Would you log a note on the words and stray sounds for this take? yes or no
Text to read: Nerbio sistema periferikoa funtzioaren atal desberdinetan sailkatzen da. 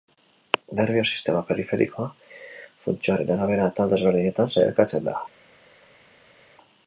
yes